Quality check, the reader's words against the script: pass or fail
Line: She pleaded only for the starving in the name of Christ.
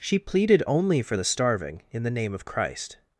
pass